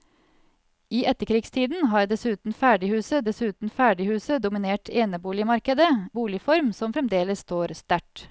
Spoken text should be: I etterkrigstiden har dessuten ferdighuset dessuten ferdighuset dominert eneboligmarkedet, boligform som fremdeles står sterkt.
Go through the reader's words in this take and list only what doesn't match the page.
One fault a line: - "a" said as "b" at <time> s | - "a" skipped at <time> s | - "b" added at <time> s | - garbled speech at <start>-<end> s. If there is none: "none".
none